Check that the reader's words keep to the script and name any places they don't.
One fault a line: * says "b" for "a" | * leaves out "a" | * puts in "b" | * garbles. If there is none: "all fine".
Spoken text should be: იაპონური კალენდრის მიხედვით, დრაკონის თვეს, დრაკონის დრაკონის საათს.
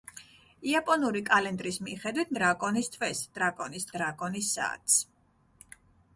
all fine